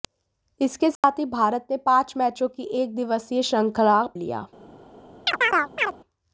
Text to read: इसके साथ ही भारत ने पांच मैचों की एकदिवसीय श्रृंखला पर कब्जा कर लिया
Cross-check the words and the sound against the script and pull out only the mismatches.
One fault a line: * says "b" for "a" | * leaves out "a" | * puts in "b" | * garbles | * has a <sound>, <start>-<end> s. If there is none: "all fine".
* has a dropout, 1.0-1.0 s
* leaves out "पर कब्जा कर"
* has a chirp, 5.3-6.0 s